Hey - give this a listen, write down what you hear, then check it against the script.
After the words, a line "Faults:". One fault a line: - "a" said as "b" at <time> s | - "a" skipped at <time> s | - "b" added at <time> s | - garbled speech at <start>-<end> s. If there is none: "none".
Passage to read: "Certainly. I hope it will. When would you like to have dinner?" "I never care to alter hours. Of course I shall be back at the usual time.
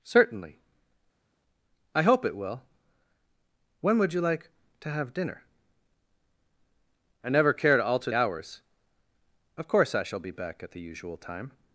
"Certainly. I hope it will. When would you like to have dinner?" "I never care to alter hours. Of course I shall be back at the usual time.
Faults:
none